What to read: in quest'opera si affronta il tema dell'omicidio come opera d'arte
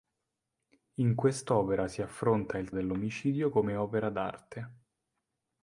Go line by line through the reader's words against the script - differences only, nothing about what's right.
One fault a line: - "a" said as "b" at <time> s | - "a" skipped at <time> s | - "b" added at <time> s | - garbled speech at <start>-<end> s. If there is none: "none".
- "tema" skipped at 2.7 s